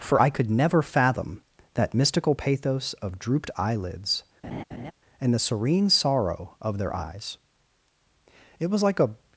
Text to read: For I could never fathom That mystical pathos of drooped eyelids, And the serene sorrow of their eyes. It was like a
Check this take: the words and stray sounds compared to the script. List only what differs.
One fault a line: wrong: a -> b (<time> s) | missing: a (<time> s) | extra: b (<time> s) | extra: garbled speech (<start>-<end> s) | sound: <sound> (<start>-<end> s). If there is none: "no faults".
sound: laugh (4.4-4.9 s)